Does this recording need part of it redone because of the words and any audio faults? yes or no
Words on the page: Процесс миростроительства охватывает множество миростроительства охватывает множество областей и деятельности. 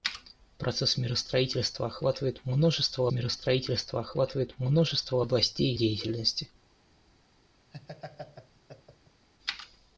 yes